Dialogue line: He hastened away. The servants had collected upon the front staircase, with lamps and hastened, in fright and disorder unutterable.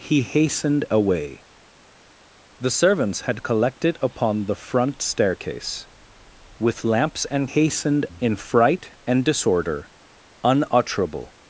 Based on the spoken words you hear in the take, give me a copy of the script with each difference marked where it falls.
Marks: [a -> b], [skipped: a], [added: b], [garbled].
He hastened away. The servants had collected upon the front staircase, with lamps and hastened, in fright and disorder unutterable.